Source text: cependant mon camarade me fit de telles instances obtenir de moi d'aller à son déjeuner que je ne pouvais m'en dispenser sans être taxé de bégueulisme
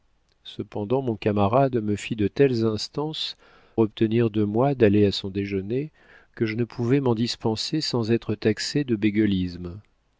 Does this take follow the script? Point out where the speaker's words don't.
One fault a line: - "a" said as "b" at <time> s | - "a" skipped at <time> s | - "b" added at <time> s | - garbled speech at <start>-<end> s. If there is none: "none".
none